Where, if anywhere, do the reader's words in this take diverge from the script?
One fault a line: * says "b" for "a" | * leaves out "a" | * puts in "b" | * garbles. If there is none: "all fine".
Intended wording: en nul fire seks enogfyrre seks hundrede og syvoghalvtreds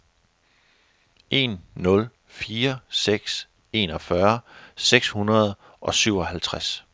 all fine